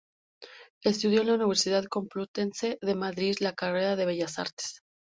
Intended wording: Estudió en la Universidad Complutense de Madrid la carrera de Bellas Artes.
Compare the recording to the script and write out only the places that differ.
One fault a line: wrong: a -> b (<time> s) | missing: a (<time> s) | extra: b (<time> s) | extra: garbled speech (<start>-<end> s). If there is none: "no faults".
no faults